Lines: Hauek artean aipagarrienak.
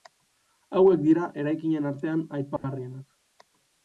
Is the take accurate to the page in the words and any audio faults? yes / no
no